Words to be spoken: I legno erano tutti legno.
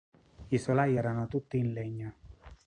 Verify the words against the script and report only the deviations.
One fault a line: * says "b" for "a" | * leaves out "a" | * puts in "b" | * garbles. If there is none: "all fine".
* says "solai" for "legno"
* puts in "in"